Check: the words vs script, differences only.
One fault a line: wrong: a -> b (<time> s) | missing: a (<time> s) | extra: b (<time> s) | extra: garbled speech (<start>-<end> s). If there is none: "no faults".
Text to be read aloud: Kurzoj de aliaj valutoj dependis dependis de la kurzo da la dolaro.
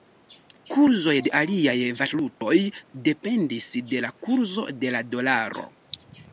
missing: dependis (3.7 s)
wrong: da -> de (4.8 s)